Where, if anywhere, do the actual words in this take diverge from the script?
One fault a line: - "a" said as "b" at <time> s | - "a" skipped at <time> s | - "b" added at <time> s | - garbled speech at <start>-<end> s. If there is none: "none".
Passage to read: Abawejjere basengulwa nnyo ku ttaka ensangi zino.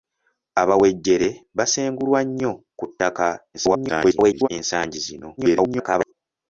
- garbled speech at 3.5-4.5 s
- garbled speech at 5.4-6.1 s